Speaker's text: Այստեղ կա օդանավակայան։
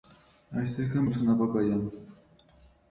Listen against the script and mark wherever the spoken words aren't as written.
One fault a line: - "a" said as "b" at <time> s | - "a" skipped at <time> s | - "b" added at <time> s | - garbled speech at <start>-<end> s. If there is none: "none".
none